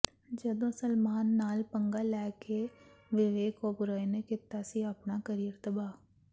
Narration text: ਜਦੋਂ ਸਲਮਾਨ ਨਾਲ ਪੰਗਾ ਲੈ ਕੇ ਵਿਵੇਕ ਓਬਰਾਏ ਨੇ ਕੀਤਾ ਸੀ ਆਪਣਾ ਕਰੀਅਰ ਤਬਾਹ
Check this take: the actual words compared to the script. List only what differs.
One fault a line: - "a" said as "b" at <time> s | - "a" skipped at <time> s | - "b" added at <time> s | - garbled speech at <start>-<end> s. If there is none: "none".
none